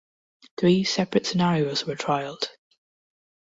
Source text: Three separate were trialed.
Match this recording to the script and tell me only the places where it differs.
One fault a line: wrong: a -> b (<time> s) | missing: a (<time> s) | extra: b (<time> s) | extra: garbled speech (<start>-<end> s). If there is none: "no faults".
extra: scenarios (1.3 s)